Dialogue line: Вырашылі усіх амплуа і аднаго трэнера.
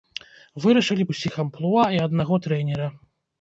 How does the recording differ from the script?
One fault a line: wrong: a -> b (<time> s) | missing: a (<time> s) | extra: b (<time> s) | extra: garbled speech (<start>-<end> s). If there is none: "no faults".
no faults